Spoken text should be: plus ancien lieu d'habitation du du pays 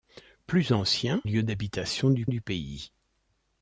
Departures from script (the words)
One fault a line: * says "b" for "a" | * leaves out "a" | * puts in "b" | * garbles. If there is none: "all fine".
all fine